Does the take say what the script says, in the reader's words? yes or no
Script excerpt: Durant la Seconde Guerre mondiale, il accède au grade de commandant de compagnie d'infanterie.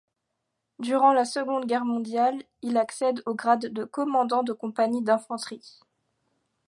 yes